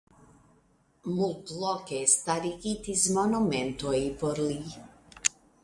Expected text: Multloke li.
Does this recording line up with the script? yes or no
no